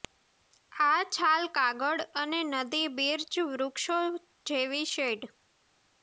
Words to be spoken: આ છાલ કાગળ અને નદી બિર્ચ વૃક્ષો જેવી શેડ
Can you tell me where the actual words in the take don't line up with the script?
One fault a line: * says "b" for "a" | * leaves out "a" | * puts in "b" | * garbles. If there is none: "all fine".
all fine